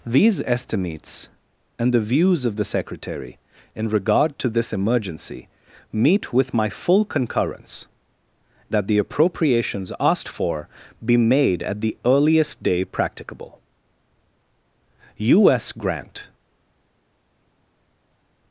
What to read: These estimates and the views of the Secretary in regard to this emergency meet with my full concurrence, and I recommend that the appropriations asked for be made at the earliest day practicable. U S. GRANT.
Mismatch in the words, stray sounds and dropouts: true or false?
true